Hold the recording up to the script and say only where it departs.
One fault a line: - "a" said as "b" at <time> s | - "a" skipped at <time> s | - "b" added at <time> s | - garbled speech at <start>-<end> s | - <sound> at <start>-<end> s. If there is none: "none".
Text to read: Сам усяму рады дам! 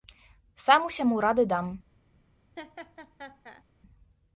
- laugh at 2.6-3.6 s